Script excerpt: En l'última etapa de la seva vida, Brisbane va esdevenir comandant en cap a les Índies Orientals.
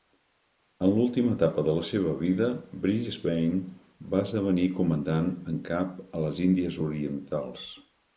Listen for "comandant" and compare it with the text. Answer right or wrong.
right